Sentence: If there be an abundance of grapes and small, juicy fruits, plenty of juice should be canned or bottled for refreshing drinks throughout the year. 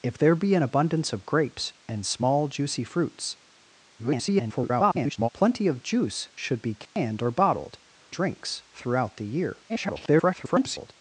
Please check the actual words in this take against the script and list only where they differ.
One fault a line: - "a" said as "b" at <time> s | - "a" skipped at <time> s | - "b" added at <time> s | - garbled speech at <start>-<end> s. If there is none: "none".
- garbled speech at 4.0-5.3 s
- "for refreshing" skipped at 7.8 s
- garbled speech at 9.7-10.9 s